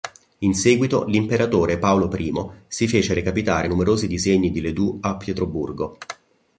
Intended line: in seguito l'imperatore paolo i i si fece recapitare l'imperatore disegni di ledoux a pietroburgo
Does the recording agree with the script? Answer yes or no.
no